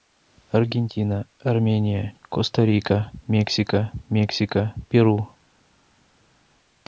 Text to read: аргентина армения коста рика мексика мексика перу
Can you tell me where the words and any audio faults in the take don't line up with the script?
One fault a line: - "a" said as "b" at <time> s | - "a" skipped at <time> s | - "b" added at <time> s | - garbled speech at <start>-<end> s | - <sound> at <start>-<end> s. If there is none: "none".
none